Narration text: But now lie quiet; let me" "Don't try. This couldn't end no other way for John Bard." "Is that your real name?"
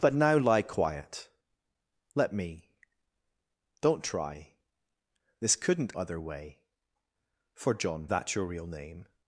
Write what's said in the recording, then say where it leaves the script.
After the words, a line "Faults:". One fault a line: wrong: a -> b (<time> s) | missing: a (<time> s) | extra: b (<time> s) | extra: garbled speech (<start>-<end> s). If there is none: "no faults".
But now lie quiet; let me" "Don't try. This couldn't other way for John That your real name?"
Faults:
missing: end no (6.0 s)
missing: Bard Is (8.1 s)